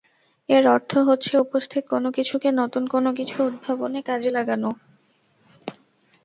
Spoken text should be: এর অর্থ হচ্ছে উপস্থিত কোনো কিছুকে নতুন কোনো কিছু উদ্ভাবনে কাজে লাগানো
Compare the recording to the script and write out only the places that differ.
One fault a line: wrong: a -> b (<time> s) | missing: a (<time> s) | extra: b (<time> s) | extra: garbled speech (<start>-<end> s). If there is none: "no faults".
no faults